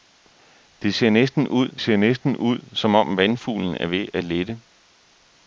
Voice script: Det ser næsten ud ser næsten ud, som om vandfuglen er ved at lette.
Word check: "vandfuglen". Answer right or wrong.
right